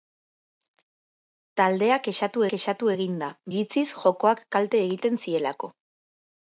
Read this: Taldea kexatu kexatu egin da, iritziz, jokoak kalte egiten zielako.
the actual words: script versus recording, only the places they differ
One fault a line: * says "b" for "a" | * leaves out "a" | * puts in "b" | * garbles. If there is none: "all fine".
all fine